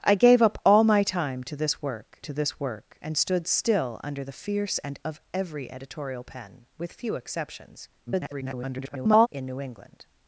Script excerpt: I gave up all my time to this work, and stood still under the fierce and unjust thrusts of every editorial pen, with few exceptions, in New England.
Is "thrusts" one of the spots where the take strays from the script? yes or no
yes